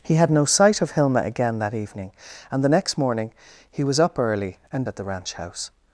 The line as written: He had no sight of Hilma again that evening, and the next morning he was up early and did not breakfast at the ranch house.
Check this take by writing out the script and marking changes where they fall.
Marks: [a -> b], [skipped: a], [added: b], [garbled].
He had no sight of Hilma again that evening, and the next morning he was up early and [skipped: did not breakfast] at the ranch house.